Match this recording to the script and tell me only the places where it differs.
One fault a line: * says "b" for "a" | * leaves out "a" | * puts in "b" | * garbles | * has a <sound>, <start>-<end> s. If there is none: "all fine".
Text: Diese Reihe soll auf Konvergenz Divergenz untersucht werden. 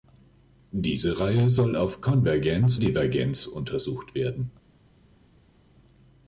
all fine